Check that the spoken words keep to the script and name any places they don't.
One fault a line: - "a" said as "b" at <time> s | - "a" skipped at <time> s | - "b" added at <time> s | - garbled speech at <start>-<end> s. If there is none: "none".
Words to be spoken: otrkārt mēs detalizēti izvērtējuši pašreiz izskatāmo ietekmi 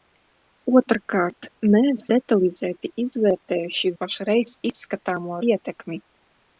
none